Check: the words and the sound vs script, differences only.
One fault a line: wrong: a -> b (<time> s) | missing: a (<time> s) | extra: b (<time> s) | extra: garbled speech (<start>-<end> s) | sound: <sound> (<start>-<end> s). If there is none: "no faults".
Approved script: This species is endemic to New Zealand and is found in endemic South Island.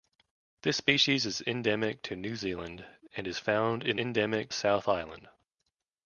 no faults